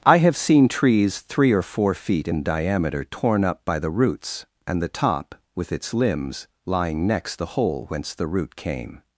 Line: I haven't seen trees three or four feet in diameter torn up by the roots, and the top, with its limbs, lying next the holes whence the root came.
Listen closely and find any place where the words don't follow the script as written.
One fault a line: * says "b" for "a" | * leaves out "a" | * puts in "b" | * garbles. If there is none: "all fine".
* says "have" for "haven't"
* says "hole" for "holes"